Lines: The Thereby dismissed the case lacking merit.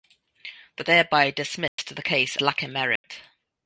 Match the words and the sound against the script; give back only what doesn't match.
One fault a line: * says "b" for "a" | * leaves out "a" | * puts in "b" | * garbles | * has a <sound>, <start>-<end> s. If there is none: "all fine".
* has a dropout, 1.7-1.8 s
* has a dropout, 3.0-3.0 s